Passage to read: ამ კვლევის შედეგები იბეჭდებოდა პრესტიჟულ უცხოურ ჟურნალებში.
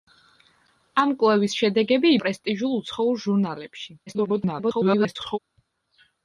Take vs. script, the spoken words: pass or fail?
fail